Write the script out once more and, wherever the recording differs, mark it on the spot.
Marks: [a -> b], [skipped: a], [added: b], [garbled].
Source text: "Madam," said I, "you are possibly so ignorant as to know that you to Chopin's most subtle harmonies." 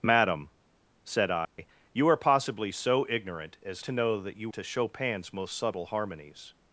"Madam," said I, "you are possibly so ignorant as to know that you to Chopin's most subtle harmonies."